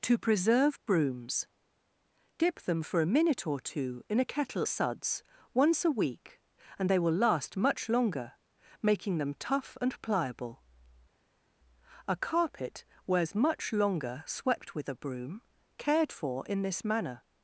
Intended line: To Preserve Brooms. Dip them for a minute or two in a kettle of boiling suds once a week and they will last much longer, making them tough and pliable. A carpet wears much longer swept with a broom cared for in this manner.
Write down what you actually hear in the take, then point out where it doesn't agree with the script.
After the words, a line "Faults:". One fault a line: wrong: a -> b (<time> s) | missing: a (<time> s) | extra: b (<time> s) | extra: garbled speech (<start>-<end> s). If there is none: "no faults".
To Preserve Brooms. Dip them for a minute or two in a kettle suds once a week and they will last much longer, making them tough and pliable. A carpet wears much longer swept with a broom cared for in this manner.
Faults:
missing: of boiling (4.7 s)